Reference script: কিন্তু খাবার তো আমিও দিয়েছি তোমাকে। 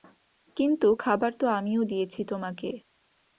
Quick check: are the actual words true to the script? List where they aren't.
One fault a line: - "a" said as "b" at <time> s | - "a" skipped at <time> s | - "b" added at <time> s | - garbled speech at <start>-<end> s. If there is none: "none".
none